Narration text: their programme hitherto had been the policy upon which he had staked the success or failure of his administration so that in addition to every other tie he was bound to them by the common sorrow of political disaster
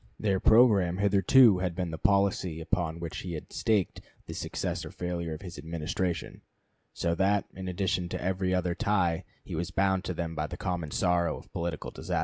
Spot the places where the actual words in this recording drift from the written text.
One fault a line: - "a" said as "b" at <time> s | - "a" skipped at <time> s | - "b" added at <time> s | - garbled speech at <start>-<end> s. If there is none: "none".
none